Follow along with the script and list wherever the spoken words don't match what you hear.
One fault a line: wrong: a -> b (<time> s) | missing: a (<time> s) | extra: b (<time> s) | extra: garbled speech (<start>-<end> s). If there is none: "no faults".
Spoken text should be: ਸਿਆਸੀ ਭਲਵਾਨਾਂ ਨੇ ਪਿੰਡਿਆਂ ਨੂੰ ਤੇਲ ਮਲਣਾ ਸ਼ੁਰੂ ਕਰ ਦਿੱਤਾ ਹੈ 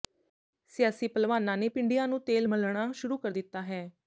no faults